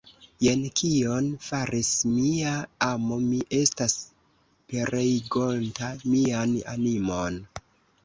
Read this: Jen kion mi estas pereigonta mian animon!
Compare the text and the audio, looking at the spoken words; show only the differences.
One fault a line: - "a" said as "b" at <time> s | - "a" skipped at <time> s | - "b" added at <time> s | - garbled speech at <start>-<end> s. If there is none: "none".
- "faris mia amo" added at 1.5 s